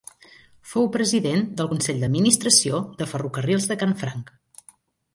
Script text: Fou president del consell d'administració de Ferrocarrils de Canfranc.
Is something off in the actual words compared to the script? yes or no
no